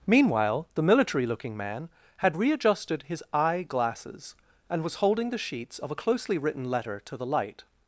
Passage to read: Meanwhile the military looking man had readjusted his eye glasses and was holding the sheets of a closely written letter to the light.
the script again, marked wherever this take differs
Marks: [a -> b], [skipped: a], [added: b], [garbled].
Meanwhile the military looking man had readjusted his eye glasses and was holding the sheets of a closely written letter to the light.